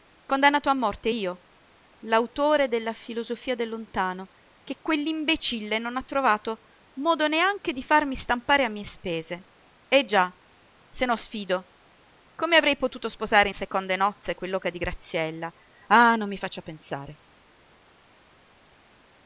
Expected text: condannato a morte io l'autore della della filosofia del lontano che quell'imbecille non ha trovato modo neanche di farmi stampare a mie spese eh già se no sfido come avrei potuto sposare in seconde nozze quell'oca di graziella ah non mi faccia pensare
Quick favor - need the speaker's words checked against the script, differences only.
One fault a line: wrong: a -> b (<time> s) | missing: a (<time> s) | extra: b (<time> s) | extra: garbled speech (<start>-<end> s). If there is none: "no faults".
missing: della (2.9 s)